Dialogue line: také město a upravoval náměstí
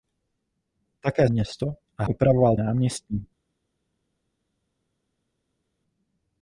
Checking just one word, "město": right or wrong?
right